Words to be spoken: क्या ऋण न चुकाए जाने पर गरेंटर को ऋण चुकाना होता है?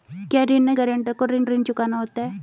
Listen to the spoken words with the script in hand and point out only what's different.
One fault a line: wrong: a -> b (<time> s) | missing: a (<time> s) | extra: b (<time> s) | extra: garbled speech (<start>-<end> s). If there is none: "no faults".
missing: चुकाए जाने पर (0.8 s)
extra: ऋण (1.4 s)